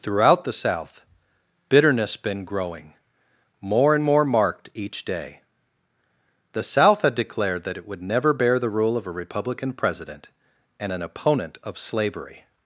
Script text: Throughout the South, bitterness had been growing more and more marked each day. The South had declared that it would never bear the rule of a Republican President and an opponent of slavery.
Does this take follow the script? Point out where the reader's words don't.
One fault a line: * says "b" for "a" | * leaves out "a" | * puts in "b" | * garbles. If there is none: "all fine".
* leaves out "had"